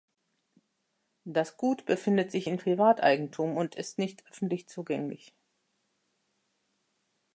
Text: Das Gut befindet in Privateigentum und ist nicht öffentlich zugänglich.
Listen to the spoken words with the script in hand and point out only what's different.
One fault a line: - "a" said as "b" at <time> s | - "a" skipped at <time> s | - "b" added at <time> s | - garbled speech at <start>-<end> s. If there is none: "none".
- "sich" added at 2.3 s